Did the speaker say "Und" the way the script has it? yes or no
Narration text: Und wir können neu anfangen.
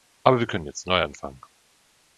no